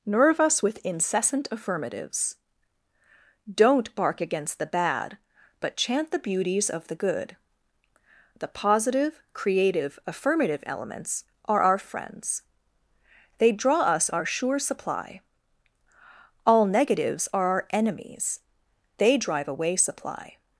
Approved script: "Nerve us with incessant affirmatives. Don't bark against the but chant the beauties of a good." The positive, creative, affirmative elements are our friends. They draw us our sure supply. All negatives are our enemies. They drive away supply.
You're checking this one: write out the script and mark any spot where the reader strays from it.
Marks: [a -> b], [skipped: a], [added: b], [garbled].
"Nerve us with incessant affirmatives. Don't bark against the [added: bad] but chant the beauties of [a -> the] good." The positive, creative, affirmative elements are our friends. They draw us our sure supply. All negatives are our enemies. They drive away supply.